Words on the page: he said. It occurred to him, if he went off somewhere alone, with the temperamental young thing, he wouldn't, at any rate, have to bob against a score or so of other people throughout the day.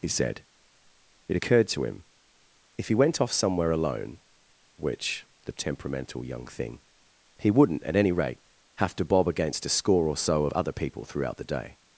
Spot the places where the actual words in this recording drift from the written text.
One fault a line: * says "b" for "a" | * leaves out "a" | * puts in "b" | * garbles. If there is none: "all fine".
* says "which" for "with"